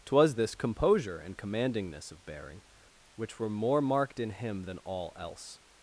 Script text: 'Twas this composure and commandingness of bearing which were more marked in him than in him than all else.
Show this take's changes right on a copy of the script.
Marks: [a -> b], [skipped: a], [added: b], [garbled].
'Twas this composure and commandingness of bearing which were more marked in him than [skipped: in him than] all else.